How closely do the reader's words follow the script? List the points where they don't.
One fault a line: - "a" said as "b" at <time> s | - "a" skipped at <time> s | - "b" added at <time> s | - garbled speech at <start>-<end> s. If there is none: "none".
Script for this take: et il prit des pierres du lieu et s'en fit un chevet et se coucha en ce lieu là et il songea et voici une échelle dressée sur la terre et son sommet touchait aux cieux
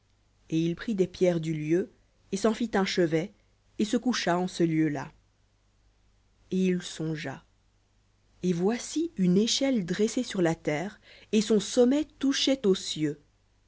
none